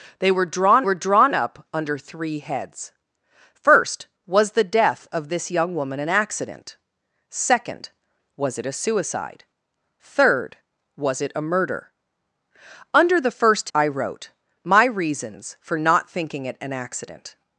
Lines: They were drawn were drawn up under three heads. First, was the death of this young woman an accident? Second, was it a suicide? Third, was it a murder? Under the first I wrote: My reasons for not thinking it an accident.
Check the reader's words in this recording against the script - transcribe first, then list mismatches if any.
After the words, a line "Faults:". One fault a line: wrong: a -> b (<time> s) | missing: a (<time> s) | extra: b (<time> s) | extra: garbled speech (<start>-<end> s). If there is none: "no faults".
They were drawn were drawn up under three heads. First, was the death of this young woman an accident? Second, was it a suicide? Third, was it a murder? Under the first I wrote: My reasons for not thinking it an accident.
Faults:
no faults